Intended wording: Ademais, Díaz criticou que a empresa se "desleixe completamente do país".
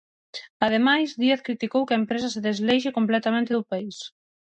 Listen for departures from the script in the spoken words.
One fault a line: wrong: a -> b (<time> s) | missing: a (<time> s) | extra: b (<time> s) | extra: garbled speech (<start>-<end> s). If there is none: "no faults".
no faults